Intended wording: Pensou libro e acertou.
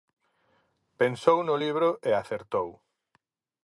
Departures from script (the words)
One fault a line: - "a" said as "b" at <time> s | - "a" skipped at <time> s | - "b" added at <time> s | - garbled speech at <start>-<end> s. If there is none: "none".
- "no" added at 1.4 s